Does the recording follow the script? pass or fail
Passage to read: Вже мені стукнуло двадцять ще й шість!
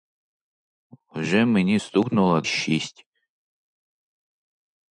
fail